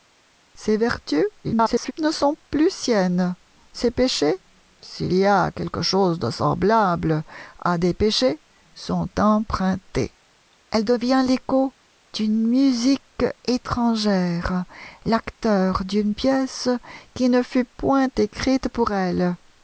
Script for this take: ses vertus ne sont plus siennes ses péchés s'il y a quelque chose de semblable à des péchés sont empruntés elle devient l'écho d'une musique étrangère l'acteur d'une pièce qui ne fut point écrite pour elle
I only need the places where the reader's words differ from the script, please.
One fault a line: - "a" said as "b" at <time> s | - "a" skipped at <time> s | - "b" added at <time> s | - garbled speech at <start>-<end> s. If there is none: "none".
- garbled speech at 1.4-1.9 s